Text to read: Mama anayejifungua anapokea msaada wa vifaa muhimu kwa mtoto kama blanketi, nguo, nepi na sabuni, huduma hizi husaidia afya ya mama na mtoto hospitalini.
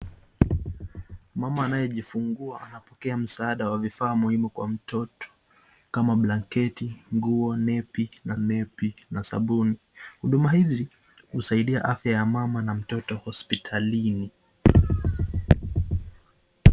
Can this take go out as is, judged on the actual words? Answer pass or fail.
fail